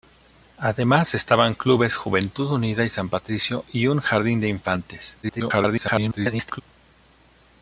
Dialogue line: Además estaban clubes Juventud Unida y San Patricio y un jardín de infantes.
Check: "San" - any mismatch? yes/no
no